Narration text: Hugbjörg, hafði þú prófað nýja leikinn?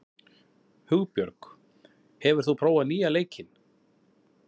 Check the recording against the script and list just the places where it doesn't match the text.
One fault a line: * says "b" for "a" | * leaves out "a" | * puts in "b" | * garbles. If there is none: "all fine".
* says "hefur" for "hafði"